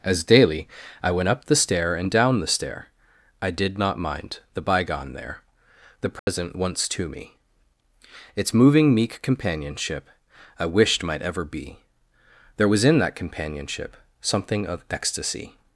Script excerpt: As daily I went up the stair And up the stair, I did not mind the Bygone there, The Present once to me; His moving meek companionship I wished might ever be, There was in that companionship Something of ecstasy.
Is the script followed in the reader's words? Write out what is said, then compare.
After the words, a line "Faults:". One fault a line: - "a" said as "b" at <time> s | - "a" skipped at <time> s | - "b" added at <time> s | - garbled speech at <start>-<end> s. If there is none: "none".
As daily I went up the stair And down the stair, I did not mind the Bygone there, The Present once to me; Its moving meek companionship I wished might ever be, There was in that companionship Something of ecstasy.
Faults:
- "up" said as "down" at 2.1 s
- "His" said as "Its" at 8.3 s